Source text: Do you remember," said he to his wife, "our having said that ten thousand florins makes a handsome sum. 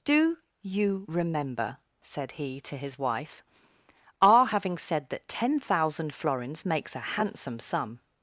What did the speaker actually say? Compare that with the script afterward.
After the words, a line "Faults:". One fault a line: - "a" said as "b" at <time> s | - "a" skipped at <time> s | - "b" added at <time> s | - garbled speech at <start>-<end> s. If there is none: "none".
Do you remember," said he to his wife, "our having said that ten thousand florins makes a handsome sum.
Faults:
none